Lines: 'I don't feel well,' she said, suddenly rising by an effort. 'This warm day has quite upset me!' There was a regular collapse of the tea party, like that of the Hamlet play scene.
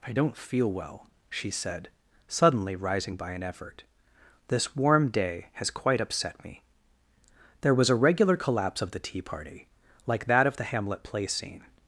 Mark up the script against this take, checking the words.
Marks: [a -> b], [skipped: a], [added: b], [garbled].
'I don't feel well,' she said, suddenly rising by an effort. 'This warm day has quite upset me!' There was a regular collapse of the tea party, like that of the Hamlet play scene.